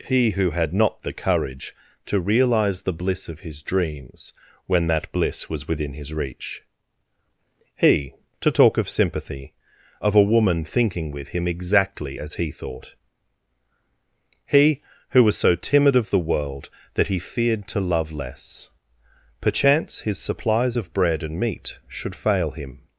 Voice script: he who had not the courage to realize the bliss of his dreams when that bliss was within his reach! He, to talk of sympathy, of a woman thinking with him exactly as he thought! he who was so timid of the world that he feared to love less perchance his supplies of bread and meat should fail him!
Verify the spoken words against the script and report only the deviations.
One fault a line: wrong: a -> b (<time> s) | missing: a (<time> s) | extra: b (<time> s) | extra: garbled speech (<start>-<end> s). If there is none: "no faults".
no faults